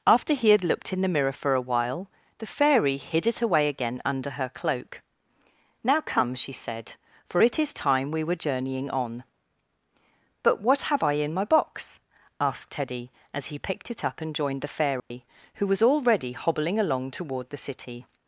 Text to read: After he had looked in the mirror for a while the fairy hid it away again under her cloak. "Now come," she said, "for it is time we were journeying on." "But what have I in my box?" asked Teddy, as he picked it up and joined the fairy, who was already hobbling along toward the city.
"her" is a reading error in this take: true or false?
false